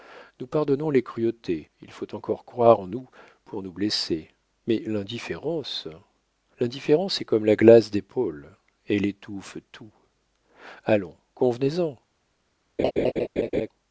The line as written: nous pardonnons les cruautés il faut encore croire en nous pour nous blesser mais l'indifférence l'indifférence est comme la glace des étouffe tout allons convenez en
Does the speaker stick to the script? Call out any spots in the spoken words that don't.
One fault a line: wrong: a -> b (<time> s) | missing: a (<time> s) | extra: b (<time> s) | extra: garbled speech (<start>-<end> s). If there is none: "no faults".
extra: pôles elle (8.0 s)